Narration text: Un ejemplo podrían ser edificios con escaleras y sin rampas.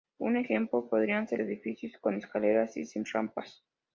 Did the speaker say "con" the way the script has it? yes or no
yes